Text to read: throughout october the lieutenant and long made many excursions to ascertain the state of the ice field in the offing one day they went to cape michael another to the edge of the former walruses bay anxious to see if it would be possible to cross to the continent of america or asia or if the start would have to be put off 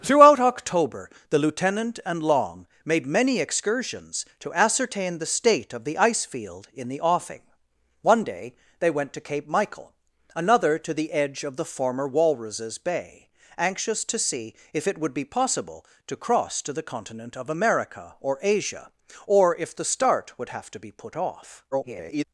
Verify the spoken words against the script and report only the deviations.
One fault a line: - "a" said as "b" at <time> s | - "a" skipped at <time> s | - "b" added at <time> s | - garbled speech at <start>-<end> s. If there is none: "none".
- garbled speech at 21.7-22.2 s